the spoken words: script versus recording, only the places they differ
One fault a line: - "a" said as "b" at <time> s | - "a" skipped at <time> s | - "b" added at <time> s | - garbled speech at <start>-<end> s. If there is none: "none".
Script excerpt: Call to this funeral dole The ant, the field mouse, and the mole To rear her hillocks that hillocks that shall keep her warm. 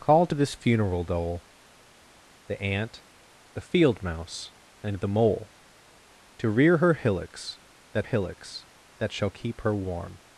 none